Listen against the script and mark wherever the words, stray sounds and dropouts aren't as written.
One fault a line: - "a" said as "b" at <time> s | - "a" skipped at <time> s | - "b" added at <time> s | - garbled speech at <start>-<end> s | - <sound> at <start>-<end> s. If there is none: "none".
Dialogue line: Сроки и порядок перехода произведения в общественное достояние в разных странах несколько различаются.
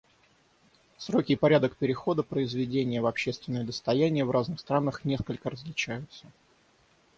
none